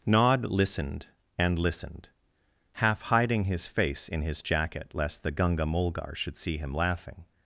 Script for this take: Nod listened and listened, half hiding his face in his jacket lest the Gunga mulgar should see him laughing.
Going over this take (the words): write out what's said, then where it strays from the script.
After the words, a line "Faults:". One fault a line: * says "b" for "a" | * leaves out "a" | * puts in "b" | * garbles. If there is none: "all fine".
Nod listened and listened, half hiding his face in his jacket lest the Gunga mulgar should see him laughing.
Faults:
all fine